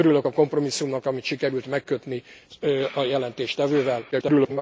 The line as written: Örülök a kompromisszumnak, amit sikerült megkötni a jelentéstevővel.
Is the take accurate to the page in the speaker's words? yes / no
no